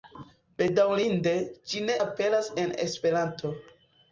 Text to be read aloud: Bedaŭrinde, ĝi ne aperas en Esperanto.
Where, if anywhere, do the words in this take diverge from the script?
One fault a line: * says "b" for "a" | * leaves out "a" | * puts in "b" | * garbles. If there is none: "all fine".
all fine